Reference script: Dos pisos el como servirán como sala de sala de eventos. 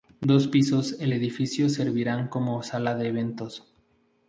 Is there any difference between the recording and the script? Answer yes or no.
yes